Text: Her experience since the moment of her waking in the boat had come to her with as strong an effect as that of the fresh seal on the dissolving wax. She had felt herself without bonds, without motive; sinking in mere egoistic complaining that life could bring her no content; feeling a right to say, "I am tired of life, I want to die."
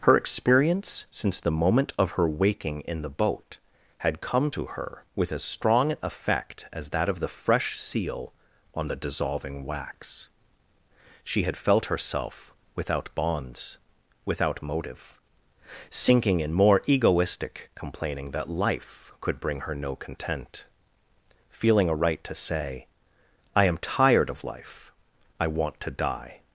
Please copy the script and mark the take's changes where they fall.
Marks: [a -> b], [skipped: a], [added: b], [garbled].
Her experience since the moment of her waking in the boat had come to her with as strong an effect as that of the fresh seal on the dissolving wax. She had felt herself without bonds, without motive; sinking in [mere -> more] egoistic complaining that life could bring her no content; feeling a right to say, "I am tired of life, I want to die."